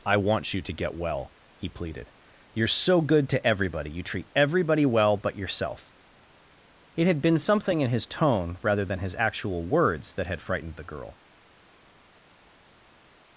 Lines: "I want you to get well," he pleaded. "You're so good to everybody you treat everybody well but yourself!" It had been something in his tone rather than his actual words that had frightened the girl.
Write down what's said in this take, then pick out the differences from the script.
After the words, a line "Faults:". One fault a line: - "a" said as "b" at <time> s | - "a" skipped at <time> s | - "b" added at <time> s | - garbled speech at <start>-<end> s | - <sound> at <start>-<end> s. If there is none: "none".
"I want you to get well," he pleaded. "You're so good to everybody you treat everybody well but yourself!" It had been something in his tone rather than his actual words that had frightened the girl.
Faults:
none